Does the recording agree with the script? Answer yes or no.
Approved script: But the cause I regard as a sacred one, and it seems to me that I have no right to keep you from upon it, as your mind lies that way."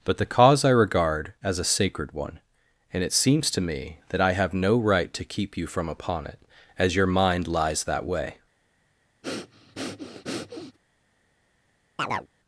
yes